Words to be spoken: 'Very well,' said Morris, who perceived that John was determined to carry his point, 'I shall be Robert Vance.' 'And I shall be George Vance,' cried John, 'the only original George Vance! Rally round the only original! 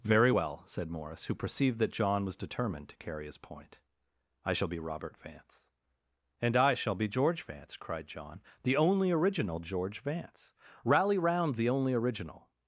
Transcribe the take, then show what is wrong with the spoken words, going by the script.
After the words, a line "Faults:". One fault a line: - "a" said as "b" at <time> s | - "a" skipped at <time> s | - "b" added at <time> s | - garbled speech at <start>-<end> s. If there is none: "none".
'Very well,' said Morris, who perceived that John was determined to carry his point, 'I shall be Robert Vance.' 'And I shall be George Vance,' cried John, 'the only original George Vance! Rally round the only original!
Faults:
none